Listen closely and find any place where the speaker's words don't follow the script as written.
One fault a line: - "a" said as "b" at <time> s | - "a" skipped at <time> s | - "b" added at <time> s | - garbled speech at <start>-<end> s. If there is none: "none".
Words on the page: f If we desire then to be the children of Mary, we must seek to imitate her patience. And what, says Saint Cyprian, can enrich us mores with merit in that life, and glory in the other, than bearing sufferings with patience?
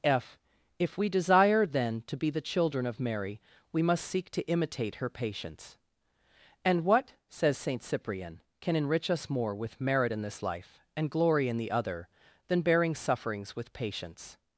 - "mores" said as "more" at 9.3 s
- "that" said as "this" at 10.2 s